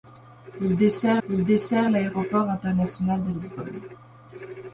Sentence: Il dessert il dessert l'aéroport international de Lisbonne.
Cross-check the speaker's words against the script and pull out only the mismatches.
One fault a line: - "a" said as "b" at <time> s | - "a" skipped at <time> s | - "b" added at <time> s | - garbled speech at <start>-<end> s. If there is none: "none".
none